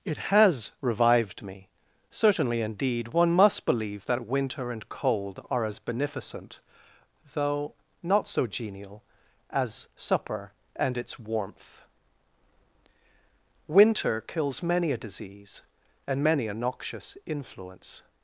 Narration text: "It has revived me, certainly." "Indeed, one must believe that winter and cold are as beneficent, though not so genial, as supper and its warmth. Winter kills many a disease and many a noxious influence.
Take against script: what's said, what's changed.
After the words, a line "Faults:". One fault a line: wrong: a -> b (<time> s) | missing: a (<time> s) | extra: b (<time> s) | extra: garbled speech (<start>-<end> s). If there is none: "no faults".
"It has revived me, certainly." "Indeed, one must believe that winter and cold are as beneficent, though not so genial, as supper and its warmth. Winter kills many a disease and many a noxious influence.
Faults:
no faults